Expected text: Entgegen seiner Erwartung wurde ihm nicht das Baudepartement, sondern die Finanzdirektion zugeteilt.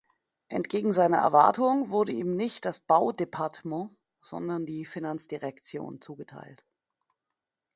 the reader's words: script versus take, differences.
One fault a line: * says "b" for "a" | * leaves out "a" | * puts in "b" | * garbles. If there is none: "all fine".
all fine